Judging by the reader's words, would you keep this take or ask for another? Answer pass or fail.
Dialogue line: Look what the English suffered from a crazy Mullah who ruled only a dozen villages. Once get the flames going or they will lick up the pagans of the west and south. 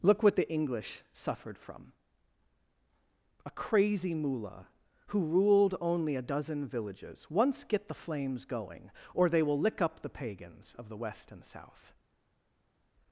pass